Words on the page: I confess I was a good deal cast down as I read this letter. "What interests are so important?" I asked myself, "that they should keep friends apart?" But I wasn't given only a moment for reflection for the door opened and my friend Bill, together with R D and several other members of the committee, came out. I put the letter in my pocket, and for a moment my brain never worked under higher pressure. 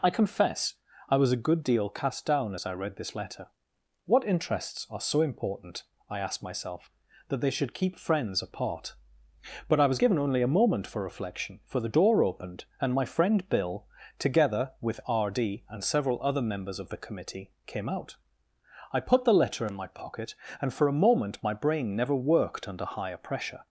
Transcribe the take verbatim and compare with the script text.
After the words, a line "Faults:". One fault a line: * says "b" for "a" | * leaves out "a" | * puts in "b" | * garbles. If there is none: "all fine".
I confess I was a good deal cast down as I read this letter. "What interests are so important?" I asked myself, "that they should keep friends apart?" But I was given only a moment for reflection for the door opened and my friend Bill, together with R D and several other members of the committee, came out. I put the letter in my pocket, and for a moment my brain never worked under higher pressure.
Faults:
* says "was" for "wasn't"